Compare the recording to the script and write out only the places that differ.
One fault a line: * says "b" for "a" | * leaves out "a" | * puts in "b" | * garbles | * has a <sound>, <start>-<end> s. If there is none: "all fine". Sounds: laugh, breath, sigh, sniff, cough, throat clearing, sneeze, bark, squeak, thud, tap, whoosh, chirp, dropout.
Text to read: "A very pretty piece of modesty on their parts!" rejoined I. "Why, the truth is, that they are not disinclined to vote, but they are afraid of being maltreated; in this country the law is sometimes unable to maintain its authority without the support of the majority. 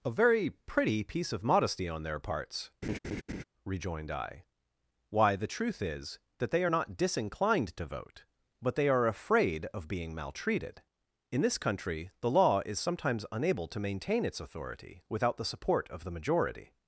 * has a laugh, 2.8-3.4 s